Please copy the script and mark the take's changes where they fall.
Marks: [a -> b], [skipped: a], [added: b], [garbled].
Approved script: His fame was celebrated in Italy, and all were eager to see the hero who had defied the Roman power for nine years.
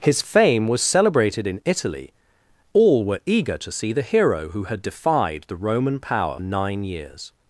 His fame was celebrated in Italy, [skipped: and] all were eager to see the hero who had defied the Roman power [skipped: for] nine years.